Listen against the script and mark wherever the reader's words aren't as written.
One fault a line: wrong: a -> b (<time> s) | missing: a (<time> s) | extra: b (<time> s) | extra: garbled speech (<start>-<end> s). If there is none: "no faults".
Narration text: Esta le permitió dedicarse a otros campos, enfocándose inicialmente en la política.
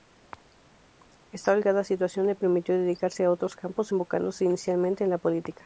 extra: holgada situación (1.5 s)